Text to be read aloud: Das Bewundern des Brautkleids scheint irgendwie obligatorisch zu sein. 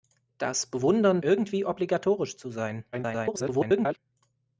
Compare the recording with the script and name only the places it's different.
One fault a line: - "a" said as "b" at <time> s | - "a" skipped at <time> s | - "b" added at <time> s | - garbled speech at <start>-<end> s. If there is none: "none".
- "des Brautkleids scheint" skipped at 1.2 s
- garbled speech at 2.9-4.0 s